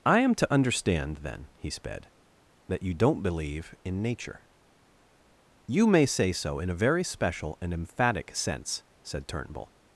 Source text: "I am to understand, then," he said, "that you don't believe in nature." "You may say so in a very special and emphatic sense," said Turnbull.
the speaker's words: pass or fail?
fail